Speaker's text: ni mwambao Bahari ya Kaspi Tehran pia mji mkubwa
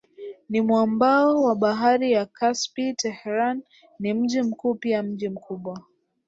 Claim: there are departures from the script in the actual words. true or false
true